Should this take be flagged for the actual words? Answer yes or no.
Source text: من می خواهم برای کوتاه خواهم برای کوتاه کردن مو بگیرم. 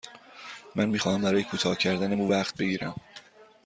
yes